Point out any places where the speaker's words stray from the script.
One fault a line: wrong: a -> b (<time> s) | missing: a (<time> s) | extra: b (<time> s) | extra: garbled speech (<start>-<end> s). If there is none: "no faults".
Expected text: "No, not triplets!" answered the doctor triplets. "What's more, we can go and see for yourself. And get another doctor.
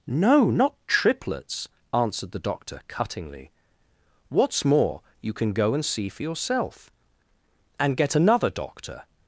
wrong: triplets -> cuttingly (2.9 s)
wrong: we -> you (5.2 s)